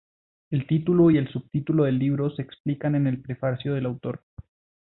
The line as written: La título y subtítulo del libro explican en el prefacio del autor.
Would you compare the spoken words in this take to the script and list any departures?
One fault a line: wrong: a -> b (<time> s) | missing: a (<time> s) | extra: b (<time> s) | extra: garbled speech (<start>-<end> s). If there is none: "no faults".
wrong: La -> El (0.5 s)
extra: el (1.2 s)
extra: se (2.3 s)